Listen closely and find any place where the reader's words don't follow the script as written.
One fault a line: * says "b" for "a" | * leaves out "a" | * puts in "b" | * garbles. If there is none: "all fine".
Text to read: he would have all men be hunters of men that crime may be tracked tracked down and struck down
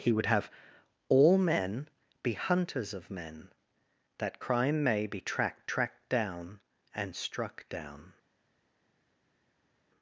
all fine